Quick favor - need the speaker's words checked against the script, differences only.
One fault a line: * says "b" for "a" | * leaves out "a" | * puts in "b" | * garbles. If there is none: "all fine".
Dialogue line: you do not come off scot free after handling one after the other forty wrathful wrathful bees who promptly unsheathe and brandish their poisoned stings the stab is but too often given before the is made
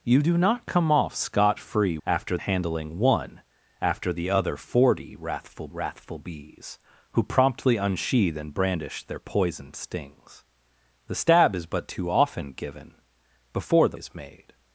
all fine